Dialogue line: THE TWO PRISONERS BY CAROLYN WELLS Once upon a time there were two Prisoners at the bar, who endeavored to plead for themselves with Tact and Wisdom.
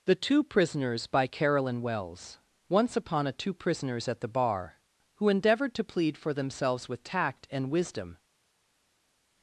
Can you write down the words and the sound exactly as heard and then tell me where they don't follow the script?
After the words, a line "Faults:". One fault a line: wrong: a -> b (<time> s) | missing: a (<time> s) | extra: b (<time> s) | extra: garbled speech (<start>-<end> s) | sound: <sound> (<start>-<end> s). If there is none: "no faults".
THE TWO PRISONERS BY CAROLYN WELLS Once upon a two Prisoners at the bar, who endeavored to plead for themselves with Tact and Wisdom.
Faults:
missing: time there were (3.3 s)